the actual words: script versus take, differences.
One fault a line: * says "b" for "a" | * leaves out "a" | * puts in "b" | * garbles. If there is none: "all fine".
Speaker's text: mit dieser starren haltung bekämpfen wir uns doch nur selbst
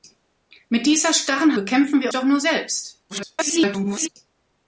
* leaves out "haltung"
* leaves out "uns"
* garbles